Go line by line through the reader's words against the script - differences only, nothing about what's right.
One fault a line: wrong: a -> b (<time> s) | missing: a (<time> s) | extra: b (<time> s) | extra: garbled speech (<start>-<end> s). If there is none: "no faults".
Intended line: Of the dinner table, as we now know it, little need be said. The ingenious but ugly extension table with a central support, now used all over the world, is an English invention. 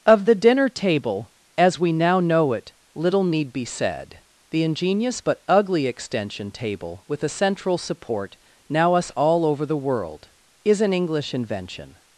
wrong: used -> us (8.9 s)